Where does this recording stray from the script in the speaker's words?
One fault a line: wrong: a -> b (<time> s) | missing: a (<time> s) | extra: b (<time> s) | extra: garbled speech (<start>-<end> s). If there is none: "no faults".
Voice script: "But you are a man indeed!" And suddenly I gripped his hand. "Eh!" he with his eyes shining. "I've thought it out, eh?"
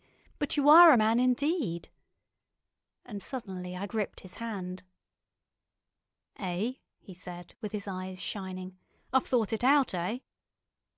extra: said (7.1 s)